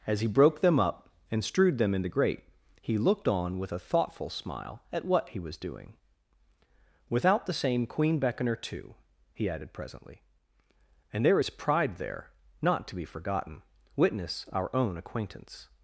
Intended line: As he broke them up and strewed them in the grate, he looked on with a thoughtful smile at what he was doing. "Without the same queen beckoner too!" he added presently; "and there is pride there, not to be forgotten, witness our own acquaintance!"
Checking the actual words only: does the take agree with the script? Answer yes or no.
yes